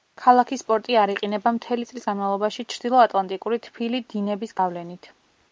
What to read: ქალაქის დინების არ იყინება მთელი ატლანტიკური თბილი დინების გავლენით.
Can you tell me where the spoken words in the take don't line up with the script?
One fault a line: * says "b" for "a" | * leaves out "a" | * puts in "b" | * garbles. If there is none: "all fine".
* says "პორტი" for "დინების"
* puts in "წლის განმავლობაში ჩრდილო"